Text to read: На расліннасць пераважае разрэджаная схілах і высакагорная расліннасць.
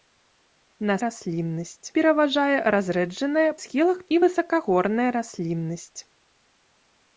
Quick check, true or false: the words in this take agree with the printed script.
true